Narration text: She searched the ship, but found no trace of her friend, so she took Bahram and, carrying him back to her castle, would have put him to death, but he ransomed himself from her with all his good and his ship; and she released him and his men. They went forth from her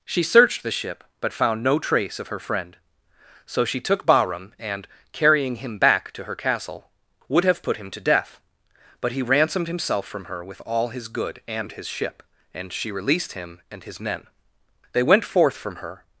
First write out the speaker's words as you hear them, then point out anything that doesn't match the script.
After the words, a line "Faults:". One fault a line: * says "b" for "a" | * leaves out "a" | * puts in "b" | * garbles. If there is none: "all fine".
She searched the ship, but found no trace of her friend, so she took Bahram and, carrying him back to her castle, would have put him to death, but he ransomed himself from her with all his good and his ship; and she released him and his men. They went forth from her
Faults:
all fine